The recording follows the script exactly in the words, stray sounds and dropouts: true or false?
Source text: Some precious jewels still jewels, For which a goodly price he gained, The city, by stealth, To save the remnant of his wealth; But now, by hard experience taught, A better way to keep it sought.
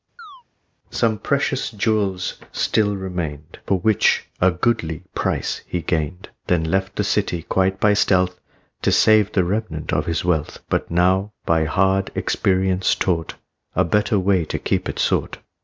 false